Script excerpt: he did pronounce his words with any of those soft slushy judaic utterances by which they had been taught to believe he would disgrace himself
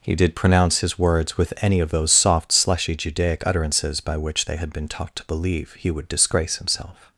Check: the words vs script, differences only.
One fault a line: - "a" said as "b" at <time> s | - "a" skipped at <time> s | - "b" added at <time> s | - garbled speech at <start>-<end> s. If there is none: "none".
none